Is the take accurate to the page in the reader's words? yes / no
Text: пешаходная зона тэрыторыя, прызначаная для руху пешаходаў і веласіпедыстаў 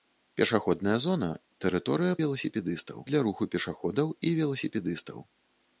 no